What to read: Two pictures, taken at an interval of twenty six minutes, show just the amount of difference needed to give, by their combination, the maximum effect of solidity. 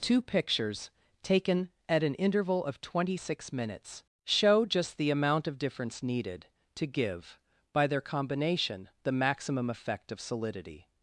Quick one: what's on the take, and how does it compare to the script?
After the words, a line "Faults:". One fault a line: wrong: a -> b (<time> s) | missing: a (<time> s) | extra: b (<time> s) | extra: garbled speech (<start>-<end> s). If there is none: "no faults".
Two pictures, taken at an interval of twenty six minutes, show just the amount of difference needed to give, by their combination, the maximum effect of solidity.
Faults:
no faults